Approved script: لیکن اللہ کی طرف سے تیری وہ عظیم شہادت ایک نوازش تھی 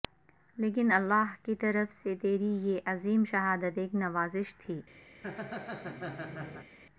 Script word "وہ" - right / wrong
wrong